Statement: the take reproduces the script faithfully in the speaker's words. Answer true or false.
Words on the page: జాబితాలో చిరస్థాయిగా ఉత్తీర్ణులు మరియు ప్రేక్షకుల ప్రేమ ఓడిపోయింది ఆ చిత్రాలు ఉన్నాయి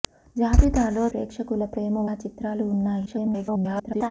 false